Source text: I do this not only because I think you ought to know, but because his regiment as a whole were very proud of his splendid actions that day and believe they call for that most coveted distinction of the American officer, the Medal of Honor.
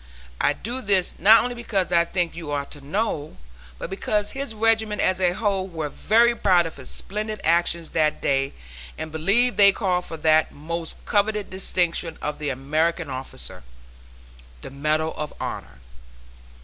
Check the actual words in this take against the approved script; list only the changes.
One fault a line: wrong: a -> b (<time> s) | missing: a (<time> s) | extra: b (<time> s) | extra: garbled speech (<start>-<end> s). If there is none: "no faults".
no faults